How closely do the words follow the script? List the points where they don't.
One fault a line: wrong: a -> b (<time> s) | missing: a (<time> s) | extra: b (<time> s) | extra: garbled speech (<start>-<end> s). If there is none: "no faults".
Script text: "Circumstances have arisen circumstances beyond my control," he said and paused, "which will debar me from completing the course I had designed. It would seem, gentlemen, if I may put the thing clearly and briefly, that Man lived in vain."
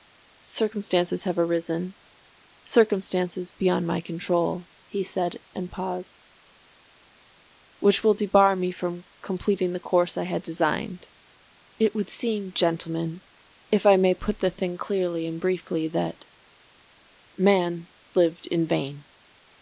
no faults